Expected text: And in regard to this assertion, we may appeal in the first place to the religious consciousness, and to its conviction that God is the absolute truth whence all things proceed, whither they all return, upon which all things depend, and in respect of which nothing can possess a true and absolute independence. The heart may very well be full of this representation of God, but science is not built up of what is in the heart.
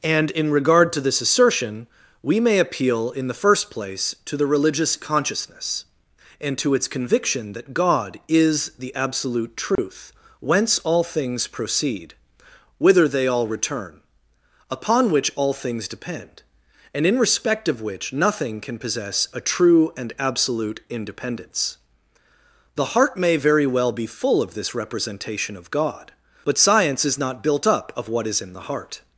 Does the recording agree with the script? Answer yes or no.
yes